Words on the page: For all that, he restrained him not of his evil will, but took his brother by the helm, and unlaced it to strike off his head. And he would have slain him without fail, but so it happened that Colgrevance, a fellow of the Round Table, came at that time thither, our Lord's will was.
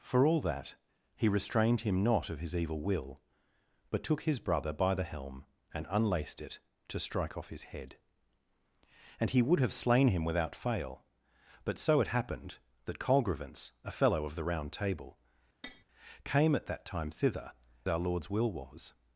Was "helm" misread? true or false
false